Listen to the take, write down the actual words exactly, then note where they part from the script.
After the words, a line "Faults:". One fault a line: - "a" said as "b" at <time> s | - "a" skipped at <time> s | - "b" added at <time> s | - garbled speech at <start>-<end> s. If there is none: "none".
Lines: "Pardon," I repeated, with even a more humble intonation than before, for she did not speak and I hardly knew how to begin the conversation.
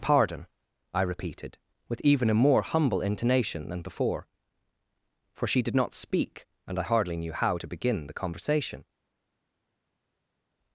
"Pardon," I repeated, with even a more humble intonation than before, for she did not speak and I hardly knew how to begin the conversation.
Faults:
none